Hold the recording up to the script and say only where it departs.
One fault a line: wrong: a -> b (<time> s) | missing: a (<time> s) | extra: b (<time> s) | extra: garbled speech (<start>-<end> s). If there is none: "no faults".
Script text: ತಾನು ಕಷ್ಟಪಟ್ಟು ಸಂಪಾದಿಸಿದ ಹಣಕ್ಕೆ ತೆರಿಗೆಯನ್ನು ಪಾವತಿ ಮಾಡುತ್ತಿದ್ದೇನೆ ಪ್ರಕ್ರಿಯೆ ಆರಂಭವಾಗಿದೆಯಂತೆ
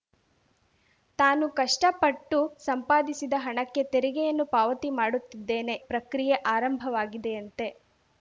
no faults